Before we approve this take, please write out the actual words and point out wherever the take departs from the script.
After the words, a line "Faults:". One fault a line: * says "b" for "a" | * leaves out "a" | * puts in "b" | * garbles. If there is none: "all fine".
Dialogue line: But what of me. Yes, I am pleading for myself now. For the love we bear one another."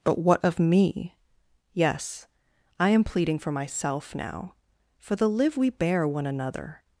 But what of me. Yes, I am pleading for myself now. For the live we bear one another."
Faults:
* says "live" for "love"